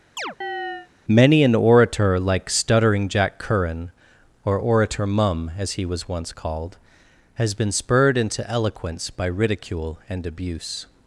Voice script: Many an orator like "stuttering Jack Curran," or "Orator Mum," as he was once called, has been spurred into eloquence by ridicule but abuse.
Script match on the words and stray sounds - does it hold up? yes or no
no